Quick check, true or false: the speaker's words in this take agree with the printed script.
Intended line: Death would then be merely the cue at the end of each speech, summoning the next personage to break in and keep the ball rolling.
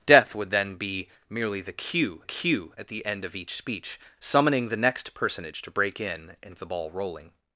false